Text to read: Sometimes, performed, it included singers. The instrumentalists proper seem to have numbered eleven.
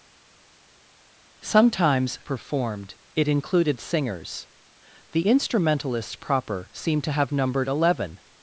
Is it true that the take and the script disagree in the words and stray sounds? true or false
false